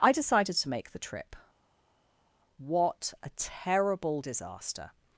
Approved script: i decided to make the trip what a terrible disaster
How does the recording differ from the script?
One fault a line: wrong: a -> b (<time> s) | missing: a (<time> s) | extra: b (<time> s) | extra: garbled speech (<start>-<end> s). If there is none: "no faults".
no faults